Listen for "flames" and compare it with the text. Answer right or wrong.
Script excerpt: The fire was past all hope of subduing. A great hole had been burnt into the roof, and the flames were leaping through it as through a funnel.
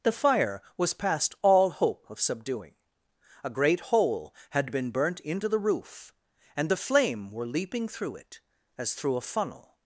wrong